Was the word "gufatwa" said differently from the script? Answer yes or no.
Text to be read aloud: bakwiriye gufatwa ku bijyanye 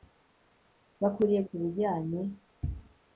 yes